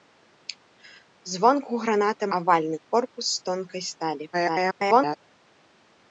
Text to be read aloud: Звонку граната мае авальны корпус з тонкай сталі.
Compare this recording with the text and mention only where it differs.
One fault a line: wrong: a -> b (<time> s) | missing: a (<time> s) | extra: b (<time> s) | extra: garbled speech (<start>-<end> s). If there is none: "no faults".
missing: мае (2.2 s)
extra: garbled speech (4.3-5.2 s)